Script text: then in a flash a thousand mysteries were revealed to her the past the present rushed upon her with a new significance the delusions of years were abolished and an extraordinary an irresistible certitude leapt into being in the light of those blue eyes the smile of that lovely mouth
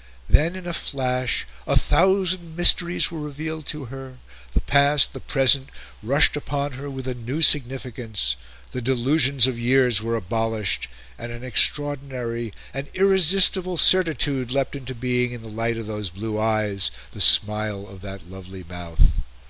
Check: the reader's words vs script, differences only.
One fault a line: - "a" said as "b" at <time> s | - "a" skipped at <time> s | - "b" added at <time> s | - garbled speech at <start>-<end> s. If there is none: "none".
none